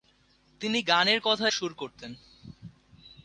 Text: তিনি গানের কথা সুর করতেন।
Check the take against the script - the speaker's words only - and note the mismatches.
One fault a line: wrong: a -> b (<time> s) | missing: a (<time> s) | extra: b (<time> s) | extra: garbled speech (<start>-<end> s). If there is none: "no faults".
no faults